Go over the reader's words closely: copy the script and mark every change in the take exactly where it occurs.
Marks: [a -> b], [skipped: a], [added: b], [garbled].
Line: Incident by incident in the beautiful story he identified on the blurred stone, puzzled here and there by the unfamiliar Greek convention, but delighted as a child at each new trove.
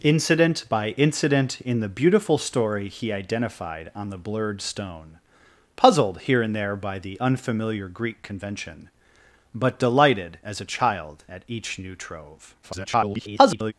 Incident by incident in the beautiful story he identified on the blurred stone, puzzled here and there by the unfamiliar Greek convention, but delighted as a child at each new trove. [garbled]